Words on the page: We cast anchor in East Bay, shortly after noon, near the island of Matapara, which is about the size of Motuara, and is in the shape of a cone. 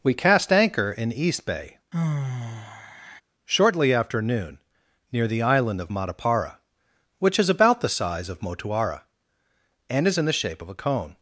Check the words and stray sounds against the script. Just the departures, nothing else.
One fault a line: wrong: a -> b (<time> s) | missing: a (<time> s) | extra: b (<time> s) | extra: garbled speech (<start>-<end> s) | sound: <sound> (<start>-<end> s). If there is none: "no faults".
sound: sigh (1.9-3.2 s)